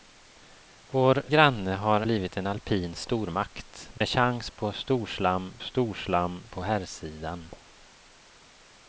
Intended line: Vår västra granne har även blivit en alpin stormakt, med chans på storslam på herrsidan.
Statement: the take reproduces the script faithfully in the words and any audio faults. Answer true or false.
false